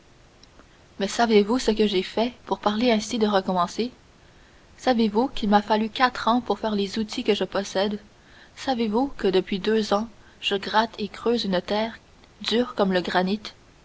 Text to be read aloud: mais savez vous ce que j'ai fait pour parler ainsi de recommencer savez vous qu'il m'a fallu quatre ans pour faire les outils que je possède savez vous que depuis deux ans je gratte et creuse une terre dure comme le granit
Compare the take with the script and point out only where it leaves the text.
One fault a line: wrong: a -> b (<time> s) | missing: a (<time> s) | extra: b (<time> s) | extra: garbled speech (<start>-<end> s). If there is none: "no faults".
no faults